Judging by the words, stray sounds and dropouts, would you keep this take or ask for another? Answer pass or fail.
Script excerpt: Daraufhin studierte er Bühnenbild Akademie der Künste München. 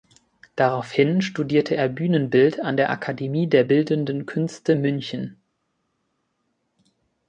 fail